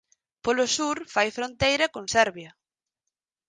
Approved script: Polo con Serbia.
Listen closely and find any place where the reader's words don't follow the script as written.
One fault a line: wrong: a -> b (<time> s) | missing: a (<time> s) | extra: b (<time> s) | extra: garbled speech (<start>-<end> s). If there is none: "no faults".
extra: sur fai fronteira (0.8 s)